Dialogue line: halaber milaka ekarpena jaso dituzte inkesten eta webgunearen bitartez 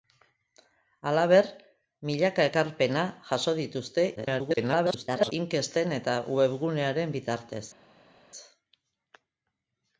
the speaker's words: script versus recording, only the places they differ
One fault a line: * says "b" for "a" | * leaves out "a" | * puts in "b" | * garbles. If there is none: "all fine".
* garbles